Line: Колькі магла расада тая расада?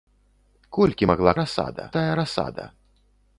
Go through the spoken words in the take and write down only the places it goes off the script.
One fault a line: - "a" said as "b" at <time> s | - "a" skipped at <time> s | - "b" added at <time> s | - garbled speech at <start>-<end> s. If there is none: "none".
none